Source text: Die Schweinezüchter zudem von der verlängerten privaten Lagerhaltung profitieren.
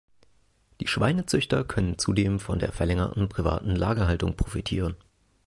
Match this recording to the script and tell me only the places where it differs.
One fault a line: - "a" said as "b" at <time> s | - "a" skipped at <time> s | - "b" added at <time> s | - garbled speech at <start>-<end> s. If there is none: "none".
- "können" added at 1.6 s